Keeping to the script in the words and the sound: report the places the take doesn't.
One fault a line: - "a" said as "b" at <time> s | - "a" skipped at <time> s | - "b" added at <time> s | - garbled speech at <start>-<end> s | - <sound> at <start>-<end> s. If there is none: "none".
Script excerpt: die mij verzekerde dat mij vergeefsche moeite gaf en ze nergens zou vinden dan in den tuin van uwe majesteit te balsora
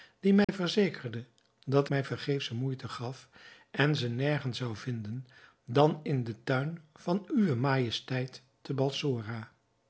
- dropout at 0.4-0.5 s